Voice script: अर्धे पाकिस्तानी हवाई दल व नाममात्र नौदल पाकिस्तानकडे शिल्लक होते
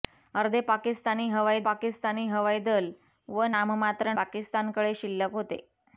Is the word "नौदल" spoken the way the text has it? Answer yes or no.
no